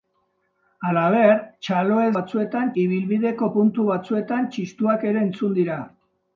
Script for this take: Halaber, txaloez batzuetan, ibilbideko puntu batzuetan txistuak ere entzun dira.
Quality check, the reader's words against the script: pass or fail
pass